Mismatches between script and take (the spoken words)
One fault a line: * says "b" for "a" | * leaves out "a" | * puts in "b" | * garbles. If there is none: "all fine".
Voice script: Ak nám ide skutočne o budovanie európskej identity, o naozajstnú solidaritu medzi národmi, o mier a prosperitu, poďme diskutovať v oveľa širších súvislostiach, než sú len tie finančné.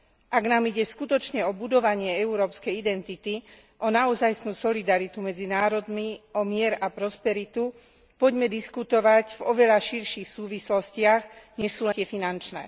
* leaves out "len"